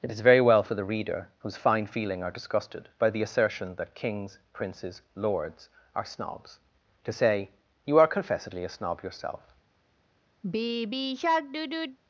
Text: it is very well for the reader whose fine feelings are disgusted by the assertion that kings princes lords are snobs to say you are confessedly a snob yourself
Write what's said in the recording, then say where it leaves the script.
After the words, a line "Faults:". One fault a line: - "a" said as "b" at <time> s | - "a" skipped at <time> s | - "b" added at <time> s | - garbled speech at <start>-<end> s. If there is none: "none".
it is very well for the reader whose fine feeling are disgusted by the assertion that kings princes lords are snobs to say you are confessedly a snob yourself
Faults:
- "feelings" said as "feeling" at 1.9 s